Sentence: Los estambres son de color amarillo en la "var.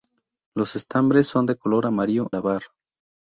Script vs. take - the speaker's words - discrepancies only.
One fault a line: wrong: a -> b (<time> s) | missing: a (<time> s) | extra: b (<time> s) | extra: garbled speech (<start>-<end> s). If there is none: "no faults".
missing: en (2.3 s)